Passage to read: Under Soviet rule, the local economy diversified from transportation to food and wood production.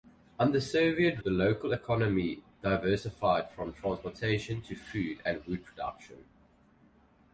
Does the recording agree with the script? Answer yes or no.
no